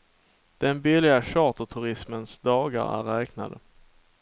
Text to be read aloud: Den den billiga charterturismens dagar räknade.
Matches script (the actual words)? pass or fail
fail